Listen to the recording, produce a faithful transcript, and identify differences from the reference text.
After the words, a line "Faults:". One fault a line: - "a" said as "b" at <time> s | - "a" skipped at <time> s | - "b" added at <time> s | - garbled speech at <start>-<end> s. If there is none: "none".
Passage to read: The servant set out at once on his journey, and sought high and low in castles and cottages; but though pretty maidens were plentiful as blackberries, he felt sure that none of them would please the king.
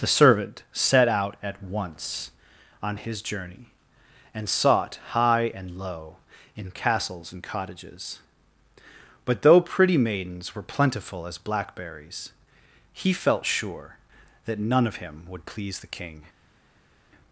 The servant set out at once on his journey, and sought high and low in castles and cottages; but though pretty maidens were plentiful as blackberries, he felt sure that none of him would please the king.
Faults:
- "them" said as "him" at 14.9 s